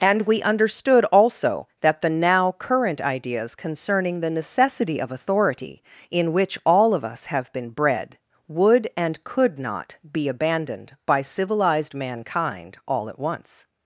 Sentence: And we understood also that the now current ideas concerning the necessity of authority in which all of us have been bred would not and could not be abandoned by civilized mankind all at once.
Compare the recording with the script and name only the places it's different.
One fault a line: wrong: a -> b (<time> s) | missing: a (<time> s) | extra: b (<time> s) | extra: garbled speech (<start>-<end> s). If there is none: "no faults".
missing: not (8.9 s)